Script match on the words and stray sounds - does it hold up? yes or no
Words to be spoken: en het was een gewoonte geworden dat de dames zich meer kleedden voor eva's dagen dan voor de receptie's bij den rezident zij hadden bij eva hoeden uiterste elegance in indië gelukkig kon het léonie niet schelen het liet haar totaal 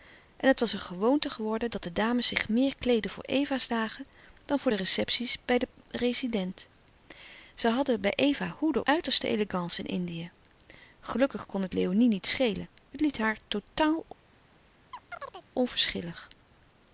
no